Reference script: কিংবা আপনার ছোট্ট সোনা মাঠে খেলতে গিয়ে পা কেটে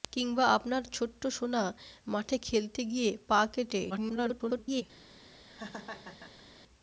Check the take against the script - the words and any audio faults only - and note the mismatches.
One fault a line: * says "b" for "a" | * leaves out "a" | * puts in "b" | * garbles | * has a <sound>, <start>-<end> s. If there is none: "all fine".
* garbles
* has a laugh, 5.5-6.5 s